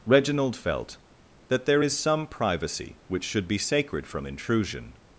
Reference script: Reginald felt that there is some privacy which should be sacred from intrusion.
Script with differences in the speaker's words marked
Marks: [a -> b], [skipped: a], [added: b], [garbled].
Reginald felt that there is some privacy which should be sacred from intrusion.